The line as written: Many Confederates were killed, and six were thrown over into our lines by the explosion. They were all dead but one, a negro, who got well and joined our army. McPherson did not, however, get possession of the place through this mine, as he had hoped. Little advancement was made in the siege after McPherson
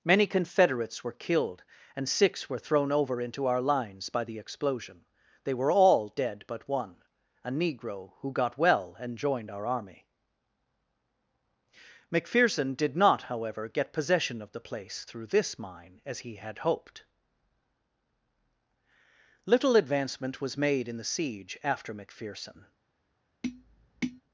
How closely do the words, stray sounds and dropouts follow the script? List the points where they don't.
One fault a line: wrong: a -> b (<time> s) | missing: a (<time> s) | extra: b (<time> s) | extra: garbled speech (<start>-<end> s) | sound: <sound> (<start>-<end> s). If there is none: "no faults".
sound: tap (23.4-24.2 s)